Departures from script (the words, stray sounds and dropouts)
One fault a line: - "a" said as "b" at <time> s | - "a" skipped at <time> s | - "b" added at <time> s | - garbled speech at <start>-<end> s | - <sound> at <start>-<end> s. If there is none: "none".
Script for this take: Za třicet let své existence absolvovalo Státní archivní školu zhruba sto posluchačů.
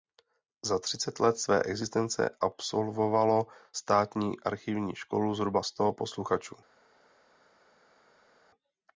none